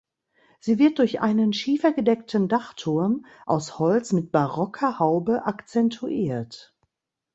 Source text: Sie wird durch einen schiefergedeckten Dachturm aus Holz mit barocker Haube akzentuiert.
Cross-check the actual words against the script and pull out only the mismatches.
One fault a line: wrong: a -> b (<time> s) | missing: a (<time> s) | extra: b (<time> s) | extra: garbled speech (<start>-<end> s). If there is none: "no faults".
no faults